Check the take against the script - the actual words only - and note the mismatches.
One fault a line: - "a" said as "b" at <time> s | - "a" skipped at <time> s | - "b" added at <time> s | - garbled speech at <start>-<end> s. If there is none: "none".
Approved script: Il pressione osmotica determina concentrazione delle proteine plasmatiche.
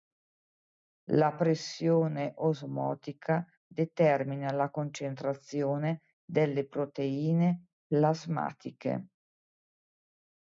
- "Il" said as "La" at 1.1 s
- "la" added at 4.5 s